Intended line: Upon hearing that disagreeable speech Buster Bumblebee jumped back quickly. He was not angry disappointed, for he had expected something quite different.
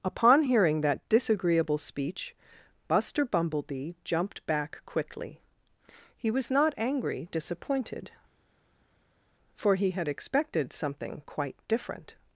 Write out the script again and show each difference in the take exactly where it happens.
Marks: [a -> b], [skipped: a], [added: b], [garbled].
Upon hearing that disagreeable speech Buster Bumblebee jumped back quickly. He was not angry disappointed, for he had expected something quite different.